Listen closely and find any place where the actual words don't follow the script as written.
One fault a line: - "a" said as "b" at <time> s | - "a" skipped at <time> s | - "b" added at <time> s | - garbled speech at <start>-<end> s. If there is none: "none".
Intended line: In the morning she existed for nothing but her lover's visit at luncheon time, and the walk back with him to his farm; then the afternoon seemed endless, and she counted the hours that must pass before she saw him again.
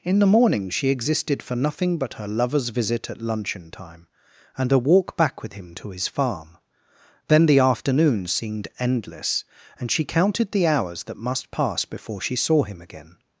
- "the" said as "a" at 4.7 s